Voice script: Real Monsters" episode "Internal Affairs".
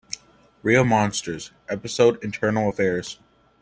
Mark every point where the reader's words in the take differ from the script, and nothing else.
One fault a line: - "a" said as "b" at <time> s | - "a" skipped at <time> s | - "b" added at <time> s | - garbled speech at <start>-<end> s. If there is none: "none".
none